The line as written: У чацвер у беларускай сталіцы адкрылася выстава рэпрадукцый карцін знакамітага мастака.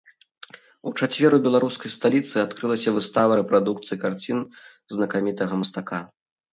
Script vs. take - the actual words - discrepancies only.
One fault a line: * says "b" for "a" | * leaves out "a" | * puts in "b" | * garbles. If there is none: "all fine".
all fine